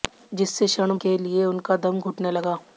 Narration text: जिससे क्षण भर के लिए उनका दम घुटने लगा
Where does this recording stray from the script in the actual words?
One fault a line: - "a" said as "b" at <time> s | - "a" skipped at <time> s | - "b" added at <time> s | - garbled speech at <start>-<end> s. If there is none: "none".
- "भर" skipped at 0.9 s